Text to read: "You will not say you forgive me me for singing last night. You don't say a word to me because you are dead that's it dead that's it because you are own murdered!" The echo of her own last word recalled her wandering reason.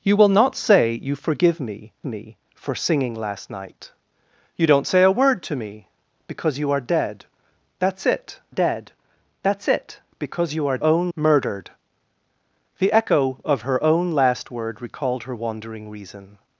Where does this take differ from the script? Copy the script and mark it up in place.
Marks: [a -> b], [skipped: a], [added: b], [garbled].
"You will not say you forgive me me for singing last night. You don't say a word to me because you are dead that's it dead that's it because you are own murdered!" The echo of her own last word recalled her wandering reason.